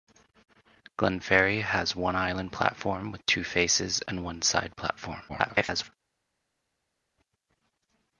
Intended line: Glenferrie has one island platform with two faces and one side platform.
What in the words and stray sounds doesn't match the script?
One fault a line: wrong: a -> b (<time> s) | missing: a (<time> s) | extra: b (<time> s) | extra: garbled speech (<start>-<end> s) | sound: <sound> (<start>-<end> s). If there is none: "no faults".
extra: garbled speech (5.3-5.9 s)